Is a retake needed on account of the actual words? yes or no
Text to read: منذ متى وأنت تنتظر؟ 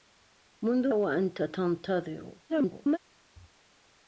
yes